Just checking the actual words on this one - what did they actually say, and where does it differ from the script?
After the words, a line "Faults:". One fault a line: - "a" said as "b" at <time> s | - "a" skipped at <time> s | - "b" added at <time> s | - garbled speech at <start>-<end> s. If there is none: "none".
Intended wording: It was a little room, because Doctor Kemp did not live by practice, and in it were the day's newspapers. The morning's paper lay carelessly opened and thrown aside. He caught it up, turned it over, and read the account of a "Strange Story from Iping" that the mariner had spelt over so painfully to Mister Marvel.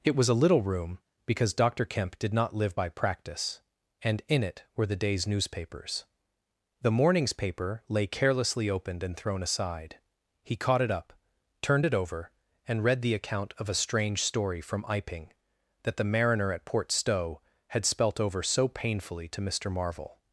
It was a little room, because Doctor Kemp did not live by practice, and in it were the day's newspapers. The morning's paper lay carelessly opened and thrown aside. He caught it up, turned it over, and read the account of a "Strange Story from Iping" that the mariner at Port Stowe had spelt over so painfully to Mister Marvel.
Faults:
- "at Port Stowe" added at 16.5 s